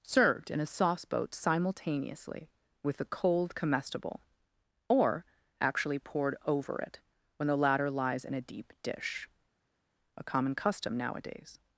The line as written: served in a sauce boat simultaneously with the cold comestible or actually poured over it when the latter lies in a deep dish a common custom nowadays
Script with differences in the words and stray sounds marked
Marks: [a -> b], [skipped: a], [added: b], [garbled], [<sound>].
served in a sauce boat simultaneously with the cold comestible or actually poured over it when the latter lies in a deep dish a common custom nowadays